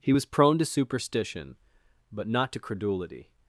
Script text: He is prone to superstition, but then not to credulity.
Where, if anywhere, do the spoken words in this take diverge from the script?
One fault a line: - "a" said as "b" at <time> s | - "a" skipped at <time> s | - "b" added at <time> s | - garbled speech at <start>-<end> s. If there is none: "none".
- "is" said as "was" at 0.1 s
- "then" skipped at 2.3 s